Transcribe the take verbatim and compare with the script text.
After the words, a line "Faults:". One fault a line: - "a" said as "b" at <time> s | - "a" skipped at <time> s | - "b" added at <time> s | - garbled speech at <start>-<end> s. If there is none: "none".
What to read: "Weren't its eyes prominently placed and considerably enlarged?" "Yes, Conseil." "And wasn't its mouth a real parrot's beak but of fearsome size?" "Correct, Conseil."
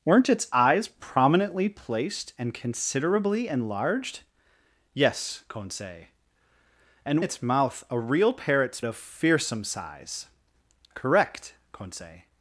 "Weren't its eyes prominently placed and considerably enlarged?" "Yes, Conseil." "And its mouth a real parrot's of fearsome size?" "Correct, Conseil."
Faults:
- "wasn't" skipped at 7.2 s
- "beak but" skipped at 8.8 s